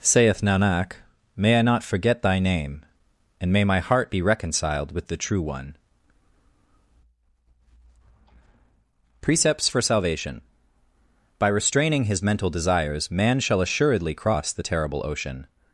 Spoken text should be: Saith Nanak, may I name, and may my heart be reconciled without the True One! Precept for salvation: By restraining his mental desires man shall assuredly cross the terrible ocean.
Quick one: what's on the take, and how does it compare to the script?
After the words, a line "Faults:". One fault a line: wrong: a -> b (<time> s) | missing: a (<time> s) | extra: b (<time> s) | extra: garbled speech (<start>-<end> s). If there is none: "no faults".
Saith Nanak, may I not forget Thy name, and may my heart be reconciled with the True One! Precepts for salvation: By restraining his mental desires man shall assuredly cross the terrible ocean.
Faults:
extra: not forget Thy (1.6 s)
wrong: without -> with (4.9 s)
wrong: Precept -> Precepts (9.2 s)